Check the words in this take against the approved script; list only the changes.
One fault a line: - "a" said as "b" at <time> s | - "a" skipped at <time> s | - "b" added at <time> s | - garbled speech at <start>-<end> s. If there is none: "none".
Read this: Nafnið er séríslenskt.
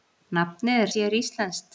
none